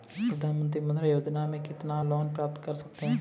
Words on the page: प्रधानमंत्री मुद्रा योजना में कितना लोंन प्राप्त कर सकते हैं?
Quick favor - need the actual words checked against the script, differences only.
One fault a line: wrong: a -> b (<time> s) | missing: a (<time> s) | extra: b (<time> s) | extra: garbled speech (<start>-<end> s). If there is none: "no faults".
no faults